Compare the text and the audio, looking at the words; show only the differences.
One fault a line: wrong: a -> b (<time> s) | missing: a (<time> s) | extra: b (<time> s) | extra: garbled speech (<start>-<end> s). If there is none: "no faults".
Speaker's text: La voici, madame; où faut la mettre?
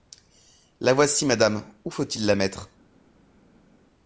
extra: il (2.0 s)